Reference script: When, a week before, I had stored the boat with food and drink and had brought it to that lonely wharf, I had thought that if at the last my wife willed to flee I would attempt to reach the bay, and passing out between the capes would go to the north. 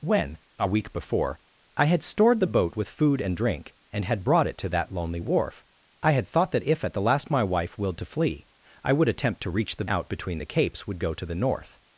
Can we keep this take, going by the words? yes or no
no